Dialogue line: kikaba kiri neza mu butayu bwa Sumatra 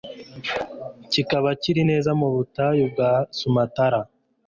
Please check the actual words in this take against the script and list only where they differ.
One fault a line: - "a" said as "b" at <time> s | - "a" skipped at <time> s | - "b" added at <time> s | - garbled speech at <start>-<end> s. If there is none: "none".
none